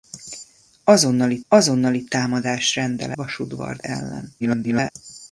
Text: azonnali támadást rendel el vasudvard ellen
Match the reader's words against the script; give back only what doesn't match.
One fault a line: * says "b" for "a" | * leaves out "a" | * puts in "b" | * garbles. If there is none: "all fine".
* puts in "azonnali"
* leaves out "el"
* garbles